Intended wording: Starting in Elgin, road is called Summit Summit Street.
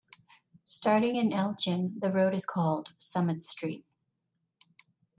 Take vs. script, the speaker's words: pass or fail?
fail